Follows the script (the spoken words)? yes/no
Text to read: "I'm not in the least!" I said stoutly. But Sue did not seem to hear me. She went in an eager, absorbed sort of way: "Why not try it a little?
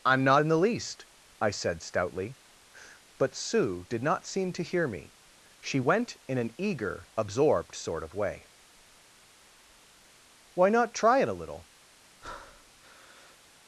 yes